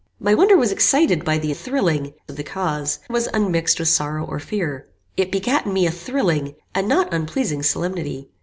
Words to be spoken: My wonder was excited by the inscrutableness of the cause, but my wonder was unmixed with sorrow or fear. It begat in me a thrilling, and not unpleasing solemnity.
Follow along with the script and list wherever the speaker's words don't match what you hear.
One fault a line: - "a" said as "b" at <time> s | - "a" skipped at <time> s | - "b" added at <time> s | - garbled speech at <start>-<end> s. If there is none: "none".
- "inscrutableness" said as "thrilling" at 1.5 s
- "but my wonder" skipped at 3.0 s